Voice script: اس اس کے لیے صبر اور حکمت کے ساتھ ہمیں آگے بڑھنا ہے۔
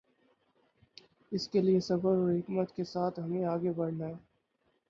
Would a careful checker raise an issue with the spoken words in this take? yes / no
yes